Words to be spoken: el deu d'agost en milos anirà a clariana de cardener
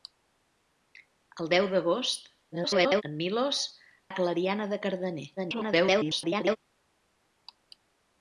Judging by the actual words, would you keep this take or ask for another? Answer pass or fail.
fail